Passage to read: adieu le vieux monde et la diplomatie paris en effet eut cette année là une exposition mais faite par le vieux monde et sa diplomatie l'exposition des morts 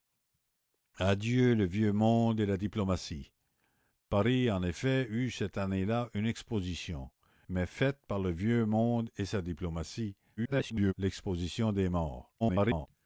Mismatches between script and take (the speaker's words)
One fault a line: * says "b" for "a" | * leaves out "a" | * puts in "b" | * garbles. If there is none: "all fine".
* garbles
* garbles